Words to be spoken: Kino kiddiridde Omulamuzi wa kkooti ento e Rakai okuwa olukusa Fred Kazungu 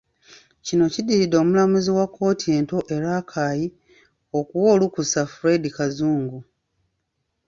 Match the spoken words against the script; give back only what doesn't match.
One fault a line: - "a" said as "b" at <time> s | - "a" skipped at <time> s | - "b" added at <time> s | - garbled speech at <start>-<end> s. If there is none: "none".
none